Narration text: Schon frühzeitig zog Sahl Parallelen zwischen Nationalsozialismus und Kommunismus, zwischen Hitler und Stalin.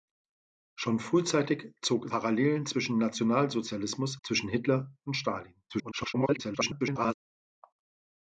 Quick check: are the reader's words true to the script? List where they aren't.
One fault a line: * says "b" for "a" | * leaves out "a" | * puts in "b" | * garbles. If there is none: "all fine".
* leaves out "Sahl"
* leaves out "und Kommunismus"
* garbles